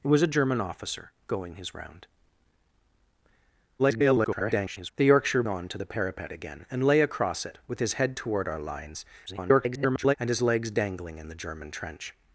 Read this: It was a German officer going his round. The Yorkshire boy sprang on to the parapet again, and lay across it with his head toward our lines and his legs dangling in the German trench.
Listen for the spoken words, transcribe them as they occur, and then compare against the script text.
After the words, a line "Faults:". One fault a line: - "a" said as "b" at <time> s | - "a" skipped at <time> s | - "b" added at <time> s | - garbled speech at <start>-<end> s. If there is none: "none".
It was a German officer going his round. [garbled] The Yorkshire on to the parapet again, and lay across it with his head toward our lines [garbled] and his legs dangling in the German trench.
Faults:
- garbled speech at 3.8-4.9 s
- "boy sprang" skipped at 5.4 s
- garbled speech at 9.3-10.1 s